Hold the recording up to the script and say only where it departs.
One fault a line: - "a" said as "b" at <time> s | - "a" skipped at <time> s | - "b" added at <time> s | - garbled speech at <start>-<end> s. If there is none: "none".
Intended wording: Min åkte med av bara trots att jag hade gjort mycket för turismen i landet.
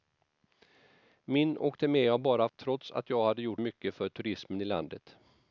none